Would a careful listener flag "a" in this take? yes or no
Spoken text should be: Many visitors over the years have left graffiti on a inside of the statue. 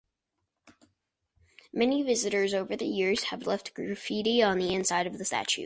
yes